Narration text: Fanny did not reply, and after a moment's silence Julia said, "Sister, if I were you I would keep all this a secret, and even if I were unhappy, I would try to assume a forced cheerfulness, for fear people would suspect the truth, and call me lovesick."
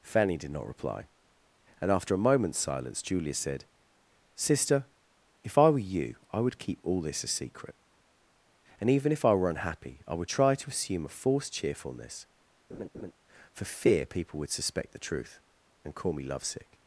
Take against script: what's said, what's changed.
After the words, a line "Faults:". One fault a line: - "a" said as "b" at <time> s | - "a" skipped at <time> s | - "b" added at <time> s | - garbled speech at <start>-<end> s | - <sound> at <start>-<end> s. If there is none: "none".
Fanny did not reply, and after a moment's silence Julia said, "Sister, if I were you I would keep all this a secret, and even if I were unhappy, I would try to assume a forced cheerfulness, for fear people would suspect the truth, and call me lovesick."
Faults:
- laugh at 12.7-13.1 s